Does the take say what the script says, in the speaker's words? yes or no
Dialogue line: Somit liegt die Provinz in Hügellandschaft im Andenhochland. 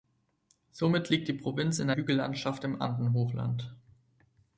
yes